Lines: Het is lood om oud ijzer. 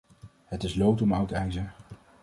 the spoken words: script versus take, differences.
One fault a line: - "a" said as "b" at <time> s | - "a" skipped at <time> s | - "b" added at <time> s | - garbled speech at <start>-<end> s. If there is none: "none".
none